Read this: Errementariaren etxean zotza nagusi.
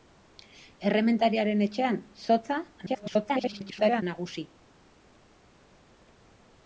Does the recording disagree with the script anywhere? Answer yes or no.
yes